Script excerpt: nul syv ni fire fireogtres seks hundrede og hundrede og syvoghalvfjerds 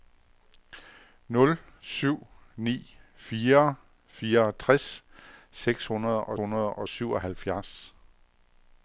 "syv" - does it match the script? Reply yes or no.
yes